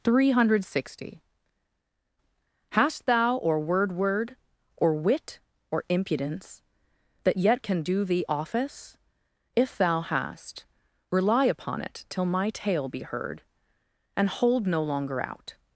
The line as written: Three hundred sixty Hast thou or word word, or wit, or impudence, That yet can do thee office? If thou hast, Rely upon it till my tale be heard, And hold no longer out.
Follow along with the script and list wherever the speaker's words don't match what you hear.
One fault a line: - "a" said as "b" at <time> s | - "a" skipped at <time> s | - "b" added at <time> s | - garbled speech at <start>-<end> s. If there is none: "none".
none